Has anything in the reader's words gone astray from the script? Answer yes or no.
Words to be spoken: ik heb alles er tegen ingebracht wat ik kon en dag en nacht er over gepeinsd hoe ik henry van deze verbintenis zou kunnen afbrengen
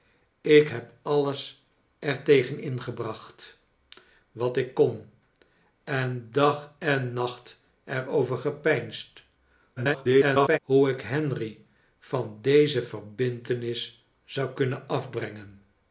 yes